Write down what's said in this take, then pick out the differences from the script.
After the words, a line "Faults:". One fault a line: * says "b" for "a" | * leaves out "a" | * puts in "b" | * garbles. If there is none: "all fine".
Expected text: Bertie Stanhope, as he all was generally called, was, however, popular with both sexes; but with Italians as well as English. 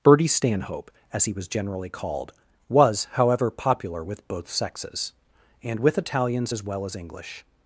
Bertie Stanhope, as he was generally called, was, however, popular with both sexes; and with Italians as well as English.
Faults:
* leaves out "all"
* says "and" for "but"